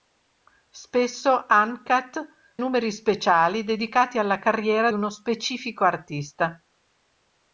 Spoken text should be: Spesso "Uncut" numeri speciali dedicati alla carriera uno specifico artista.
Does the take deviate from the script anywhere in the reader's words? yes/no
no